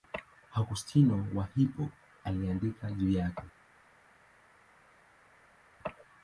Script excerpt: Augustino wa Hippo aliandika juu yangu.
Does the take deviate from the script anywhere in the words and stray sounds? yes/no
yes